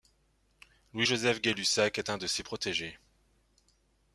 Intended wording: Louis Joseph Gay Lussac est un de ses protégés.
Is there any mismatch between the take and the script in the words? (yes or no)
no